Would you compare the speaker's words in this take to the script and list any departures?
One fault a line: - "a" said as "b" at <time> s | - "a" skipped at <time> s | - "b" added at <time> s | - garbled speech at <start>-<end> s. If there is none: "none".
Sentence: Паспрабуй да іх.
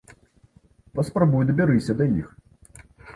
- "дабярыся" added at 1.5 s